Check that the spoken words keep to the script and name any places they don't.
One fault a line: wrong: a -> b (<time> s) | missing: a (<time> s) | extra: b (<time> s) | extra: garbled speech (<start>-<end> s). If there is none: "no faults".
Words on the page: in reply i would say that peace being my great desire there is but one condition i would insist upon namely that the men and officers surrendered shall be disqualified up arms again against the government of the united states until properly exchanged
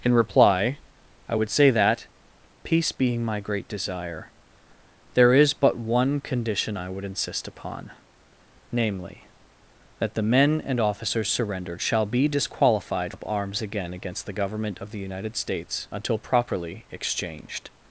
no faults